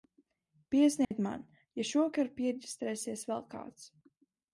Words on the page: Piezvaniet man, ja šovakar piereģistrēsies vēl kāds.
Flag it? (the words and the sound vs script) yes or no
yes